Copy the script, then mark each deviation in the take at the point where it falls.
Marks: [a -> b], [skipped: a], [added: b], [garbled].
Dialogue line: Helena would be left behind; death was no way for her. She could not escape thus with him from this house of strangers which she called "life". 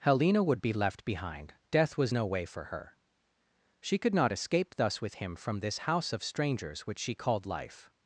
Helena would be left behind; death was no way for her. She could not escape thus with him from this house of strangers which she called "life".